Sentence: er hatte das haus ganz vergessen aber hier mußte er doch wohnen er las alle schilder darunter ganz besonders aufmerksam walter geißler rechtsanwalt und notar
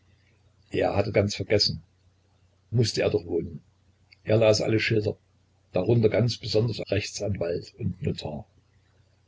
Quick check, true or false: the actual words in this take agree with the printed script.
false